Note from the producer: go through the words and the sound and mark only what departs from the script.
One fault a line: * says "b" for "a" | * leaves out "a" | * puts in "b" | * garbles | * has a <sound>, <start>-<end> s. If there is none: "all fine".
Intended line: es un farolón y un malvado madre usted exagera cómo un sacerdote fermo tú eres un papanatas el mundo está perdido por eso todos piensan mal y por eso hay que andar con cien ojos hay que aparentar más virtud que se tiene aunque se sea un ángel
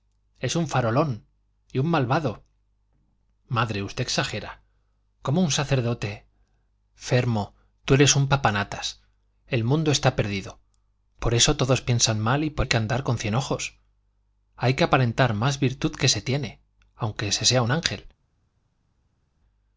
* leaves out "eso"